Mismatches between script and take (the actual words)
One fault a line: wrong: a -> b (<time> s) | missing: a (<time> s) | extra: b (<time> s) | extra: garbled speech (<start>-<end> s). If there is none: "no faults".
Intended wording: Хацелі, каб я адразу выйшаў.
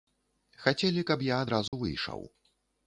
no faults